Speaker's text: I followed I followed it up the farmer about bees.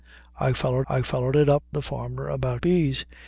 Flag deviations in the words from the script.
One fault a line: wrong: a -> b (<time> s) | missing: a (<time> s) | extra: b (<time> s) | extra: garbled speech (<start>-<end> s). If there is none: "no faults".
no faults